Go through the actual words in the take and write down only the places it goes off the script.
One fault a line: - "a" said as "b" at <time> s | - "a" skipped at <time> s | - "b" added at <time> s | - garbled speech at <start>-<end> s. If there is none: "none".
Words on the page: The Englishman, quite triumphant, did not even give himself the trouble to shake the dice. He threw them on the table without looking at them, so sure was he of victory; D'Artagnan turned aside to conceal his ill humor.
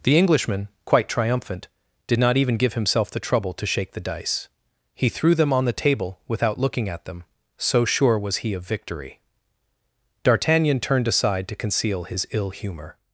none